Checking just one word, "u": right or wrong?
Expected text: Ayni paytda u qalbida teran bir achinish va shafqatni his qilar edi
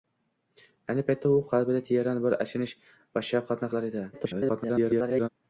right